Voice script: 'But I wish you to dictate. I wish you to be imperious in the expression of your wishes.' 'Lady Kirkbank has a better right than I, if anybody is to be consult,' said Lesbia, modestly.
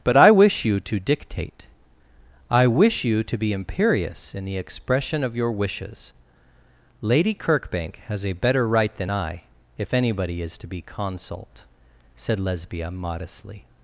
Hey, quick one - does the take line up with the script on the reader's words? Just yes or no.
yes